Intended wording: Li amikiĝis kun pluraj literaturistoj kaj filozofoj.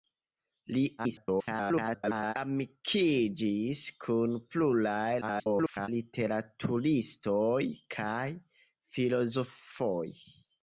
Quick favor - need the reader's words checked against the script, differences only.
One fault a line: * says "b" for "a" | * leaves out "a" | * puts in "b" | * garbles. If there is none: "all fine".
* garbles
* garbles